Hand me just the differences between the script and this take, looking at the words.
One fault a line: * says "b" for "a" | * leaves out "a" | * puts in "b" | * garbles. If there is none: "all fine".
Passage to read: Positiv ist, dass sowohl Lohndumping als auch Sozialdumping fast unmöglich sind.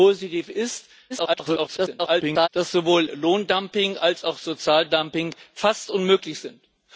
* garbles